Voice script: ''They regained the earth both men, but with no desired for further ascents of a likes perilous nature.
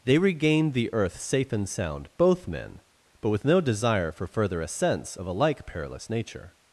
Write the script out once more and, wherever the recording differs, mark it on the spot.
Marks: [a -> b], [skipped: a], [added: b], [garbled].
''They regained the earth [added: safe and sound] both men, but with no [desired -> desire] for further ascents of a [likes -> like] perilous nature.